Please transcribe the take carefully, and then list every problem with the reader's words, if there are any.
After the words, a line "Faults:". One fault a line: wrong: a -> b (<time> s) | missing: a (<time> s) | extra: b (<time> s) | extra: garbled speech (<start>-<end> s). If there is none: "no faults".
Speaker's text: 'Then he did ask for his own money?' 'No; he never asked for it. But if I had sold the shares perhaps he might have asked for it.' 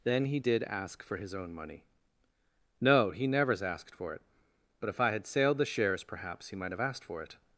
'Then he did ask for his own money?' 'No; he nevers asked for it. But if I had sailed the shares perhaps he might have asked for it.'
Faults:
wrong: never -> nevers (3.3 s)
wrong: sold -> sailed (5.3 s)